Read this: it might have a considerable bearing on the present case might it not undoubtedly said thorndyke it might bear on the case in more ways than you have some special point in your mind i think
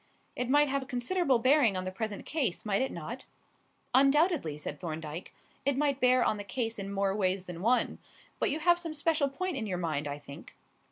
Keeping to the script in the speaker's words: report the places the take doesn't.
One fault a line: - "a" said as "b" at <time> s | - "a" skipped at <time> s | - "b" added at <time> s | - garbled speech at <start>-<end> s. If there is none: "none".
- "one but" added at 7.6 s